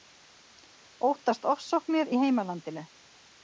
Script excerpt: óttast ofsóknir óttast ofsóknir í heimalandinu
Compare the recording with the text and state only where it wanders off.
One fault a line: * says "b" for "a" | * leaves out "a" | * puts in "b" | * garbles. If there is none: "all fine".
* leaves out "óttast ofsóknir"